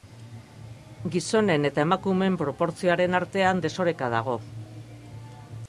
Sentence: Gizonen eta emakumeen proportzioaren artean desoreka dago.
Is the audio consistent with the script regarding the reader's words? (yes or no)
yes